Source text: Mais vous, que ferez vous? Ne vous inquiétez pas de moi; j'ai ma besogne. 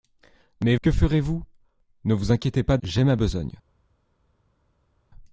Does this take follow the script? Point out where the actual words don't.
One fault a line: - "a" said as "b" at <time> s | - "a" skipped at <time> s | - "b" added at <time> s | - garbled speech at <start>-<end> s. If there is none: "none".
- "vous" skipped at 0.8 s
- "de moi" skipped at 2.8 s